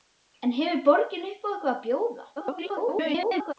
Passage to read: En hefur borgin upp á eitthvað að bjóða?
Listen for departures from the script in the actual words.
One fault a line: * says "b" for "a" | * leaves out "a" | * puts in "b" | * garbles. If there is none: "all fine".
* garbles